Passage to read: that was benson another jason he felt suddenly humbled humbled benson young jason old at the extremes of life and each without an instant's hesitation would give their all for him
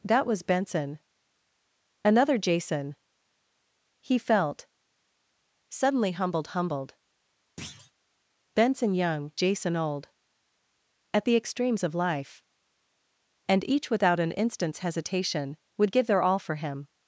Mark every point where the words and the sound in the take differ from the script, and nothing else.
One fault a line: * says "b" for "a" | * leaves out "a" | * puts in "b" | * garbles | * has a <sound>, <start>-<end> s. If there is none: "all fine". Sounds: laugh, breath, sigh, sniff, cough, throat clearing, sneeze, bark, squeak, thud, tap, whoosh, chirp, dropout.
* has a thud, 7.6-7.9 s